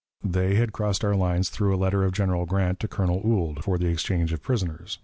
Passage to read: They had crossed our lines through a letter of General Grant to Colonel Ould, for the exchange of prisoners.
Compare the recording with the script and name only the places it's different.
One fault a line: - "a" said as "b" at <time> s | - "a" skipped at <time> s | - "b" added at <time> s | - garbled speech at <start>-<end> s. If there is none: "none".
none